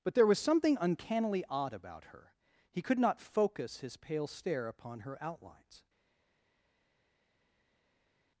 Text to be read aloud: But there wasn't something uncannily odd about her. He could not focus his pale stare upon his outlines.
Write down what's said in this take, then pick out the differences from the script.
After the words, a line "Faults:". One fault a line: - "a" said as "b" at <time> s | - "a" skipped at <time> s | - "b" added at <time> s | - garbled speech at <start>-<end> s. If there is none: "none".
But there was something uncannily odd about her. He could not focus his pale stare upon her outlines.
Faults:
- "wasn't" said as "was" at 0.2 s
- "his" said as "her" at 5.0 s